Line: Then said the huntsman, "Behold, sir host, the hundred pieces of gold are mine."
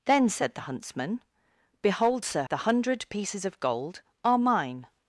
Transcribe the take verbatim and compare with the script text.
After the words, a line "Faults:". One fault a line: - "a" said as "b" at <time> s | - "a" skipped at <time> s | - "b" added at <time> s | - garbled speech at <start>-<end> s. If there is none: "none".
Then said the huntsman, "Behold, sir the hundred pieces of gold are mine."
Faults:
- "host" skipped at 2.4 s